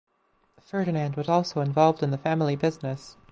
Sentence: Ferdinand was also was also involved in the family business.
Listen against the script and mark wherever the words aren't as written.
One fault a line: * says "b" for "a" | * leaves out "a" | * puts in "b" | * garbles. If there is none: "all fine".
* leaves out "was also"